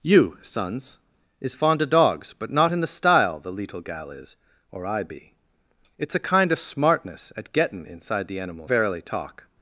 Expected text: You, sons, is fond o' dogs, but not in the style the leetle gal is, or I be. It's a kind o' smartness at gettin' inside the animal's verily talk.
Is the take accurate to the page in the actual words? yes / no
yes